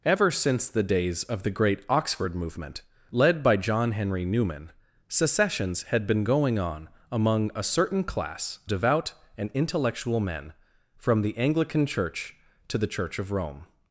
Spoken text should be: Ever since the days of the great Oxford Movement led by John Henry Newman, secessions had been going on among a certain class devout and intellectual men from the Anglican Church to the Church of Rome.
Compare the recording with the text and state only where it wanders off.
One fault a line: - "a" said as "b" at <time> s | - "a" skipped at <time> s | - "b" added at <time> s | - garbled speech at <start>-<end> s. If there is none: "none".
none